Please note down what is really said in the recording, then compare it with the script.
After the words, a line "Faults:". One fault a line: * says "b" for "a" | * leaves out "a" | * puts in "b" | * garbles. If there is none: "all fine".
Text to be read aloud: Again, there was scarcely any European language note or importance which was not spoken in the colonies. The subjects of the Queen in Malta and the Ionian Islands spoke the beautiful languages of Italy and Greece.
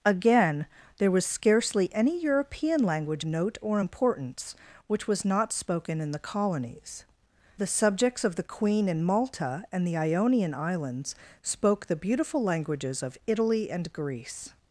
Again, there was scarcely any European language note or importance which was not spoken in the colonies. The subjects of the Queen in Malta and the Ionian Islands spoke the beautiful languages of Italy and Greece.
Faults:
all fine